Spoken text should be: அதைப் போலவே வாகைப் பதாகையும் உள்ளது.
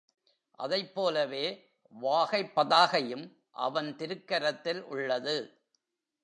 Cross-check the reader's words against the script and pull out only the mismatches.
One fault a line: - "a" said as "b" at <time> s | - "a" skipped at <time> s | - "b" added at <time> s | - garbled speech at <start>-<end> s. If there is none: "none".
- "அவன் திருக்கரத்தில்" added at 3.5 s